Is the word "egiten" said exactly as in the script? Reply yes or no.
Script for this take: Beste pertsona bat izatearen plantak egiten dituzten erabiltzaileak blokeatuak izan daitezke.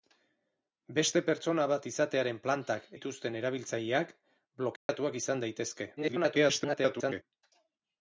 no